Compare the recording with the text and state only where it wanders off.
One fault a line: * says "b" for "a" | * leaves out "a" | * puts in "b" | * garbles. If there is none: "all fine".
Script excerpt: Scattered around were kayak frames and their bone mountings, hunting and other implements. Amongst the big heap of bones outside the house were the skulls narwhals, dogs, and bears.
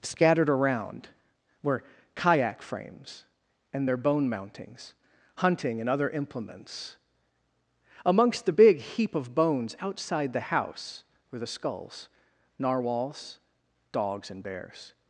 all fine